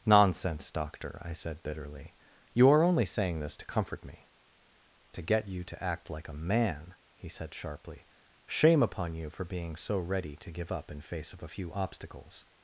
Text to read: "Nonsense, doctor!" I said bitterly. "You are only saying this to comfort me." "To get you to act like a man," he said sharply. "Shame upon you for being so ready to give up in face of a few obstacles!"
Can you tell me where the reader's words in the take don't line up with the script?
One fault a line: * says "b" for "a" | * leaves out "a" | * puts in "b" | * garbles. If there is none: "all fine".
all fine